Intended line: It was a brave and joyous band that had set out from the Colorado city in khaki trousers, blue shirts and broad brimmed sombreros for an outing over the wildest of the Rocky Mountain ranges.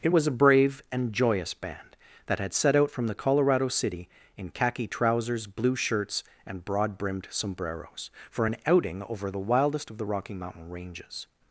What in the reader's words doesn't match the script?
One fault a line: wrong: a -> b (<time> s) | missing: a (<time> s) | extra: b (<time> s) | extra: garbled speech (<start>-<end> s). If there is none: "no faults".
no faults